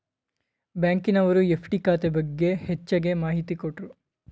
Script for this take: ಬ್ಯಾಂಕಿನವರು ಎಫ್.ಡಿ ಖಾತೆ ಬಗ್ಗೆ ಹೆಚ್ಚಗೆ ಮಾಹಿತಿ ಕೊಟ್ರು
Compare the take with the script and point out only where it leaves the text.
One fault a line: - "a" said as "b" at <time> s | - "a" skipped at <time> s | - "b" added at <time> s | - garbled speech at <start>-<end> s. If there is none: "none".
none